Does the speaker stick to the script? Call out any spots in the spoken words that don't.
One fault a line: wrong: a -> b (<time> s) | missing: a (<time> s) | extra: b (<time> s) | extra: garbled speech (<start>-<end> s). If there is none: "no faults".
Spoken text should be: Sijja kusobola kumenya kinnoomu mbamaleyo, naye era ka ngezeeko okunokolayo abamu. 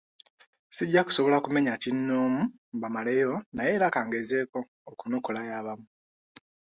no faults